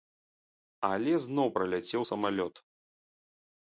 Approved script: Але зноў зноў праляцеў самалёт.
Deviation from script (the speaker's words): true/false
true